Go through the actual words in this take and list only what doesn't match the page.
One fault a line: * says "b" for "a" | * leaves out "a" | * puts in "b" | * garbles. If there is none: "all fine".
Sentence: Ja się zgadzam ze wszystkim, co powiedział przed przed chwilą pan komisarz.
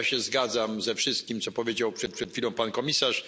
all fine